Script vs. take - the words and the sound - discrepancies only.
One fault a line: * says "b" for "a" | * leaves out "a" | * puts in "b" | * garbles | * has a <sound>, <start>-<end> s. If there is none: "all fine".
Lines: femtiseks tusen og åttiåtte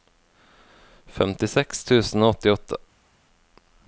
all fine